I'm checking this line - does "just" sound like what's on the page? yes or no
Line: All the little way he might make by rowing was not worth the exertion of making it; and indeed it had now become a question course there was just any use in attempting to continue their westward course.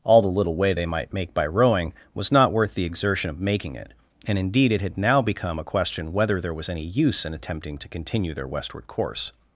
no